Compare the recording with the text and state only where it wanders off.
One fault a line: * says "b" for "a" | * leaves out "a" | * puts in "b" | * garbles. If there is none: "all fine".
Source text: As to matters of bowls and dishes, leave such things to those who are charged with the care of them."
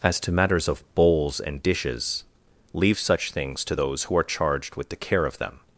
all fine